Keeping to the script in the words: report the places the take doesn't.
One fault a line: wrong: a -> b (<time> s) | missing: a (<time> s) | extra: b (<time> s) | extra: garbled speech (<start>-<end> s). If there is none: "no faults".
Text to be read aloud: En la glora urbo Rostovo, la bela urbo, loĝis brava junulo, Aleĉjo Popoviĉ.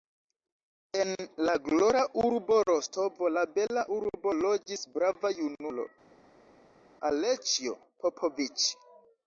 no faults